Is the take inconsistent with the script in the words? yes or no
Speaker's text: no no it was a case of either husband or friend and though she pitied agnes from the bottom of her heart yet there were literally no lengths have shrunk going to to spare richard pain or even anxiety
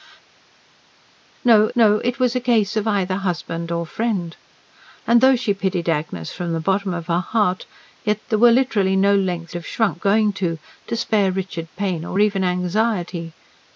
no